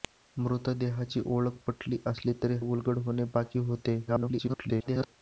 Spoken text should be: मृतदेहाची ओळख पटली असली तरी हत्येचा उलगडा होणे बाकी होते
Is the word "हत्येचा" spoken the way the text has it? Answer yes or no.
no